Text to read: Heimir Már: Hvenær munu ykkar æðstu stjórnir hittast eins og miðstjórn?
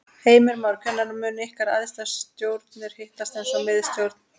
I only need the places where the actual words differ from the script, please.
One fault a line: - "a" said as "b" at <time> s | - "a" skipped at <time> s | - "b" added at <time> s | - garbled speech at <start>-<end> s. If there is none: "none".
none